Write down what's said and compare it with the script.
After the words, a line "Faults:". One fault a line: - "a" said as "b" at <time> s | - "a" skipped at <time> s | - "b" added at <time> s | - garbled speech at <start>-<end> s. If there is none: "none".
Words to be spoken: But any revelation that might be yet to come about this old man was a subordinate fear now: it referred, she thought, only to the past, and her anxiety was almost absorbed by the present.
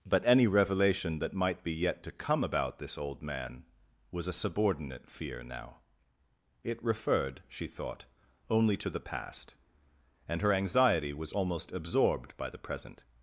But any revelation that might be yet to come about this old man was a subordinate fear now: it referred, she thought, only to the past, and her anxiety was almost absorbed by the present.
Faults:
none